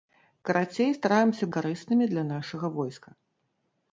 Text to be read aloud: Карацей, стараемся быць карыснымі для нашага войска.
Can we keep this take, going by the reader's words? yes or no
no